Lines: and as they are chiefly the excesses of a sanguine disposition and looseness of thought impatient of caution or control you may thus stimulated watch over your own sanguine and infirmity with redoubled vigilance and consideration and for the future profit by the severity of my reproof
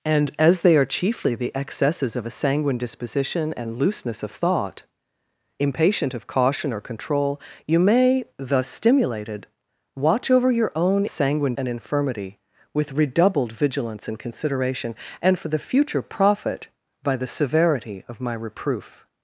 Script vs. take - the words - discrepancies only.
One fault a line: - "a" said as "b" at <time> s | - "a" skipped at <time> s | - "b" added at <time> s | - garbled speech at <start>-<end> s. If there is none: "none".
none